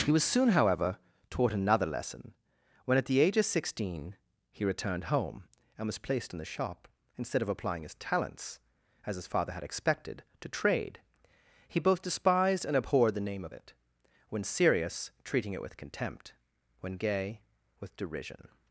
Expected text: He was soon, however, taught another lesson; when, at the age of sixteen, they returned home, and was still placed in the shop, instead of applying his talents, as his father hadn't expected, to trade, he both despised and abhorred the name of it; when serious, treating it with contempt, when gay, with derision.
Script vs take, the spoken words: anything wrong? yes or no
yes